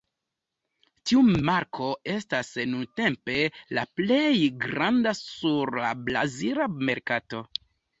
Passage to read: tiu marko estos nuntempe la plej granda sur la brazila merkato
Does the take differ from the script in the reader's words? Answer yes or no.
yes